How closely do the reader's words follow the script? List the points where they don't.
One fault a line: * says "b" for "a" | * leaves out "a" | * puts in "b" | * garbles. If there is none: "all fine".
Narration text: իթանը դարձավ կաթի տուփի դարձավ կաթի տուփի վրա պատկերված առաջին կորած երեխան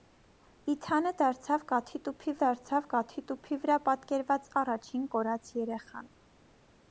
all fine